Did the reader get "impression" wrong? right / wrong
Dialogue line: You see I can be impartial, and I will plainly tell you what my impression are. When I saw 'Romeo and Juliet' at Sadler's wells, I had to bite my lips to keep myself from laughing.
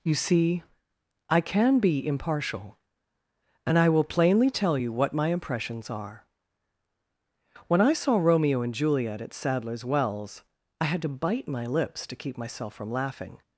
wrong